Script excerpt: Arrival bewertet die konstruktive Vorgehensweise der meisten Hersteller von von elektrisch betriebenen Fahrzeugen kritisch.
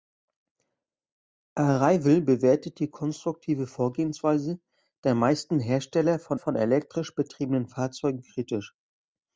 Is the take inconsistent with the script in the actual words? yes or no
no